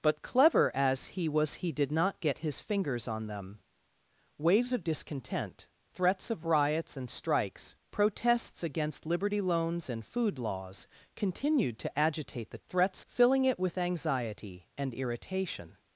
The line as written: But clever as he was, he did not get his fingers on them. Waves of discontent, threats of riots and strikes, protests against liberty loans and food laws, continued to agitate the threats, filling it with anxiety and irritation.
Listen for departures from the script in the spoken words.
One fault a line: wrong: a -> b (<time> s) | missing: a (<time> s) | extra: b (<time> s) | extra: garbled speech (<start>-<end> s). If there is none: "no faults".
no faults